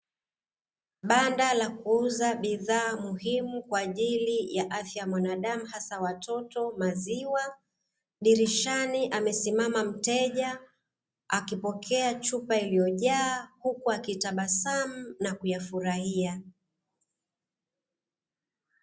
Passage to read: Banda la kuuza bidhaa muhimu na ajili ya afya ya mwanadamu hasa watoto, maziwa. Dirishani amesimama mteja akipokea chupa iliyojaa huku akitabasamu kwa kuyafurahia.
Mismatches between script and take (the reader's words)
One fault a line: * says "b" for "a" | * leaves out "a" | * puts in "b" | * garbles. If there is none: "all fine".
* says "kwa" for "na"
* says "na" for "kwa"